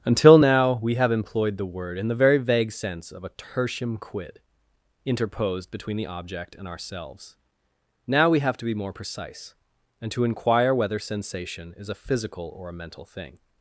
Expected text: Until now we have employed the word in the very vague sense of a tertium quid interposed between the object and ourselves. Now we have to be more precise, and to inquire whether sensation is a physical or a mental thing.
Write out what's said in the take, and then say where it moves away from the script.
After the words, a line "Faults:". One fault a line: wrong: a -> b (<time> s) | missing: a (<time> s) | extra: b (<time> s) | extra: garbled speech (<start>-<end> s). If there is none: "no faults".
Until now we have employed the word in the very vague sense of a tertium quid interposed between the object and ourselves. Now we have to be more precise, and to inquire whether sensation is a physical or a mental thing.
Faults:
no faults